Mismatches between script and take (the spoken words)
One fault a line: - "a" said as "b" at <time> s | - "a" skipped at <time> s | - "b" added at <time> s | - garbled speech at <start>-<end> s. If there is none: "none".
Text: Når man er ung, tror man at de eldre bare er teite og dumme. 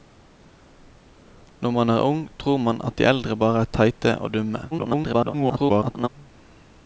- garbled speech at 4.7-6.1 s